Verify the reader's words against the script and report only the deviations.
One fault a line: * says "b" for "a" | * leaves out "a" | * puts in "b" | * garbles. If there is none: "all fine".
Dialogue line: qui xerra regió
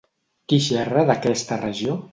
* puts in "d'aquesta"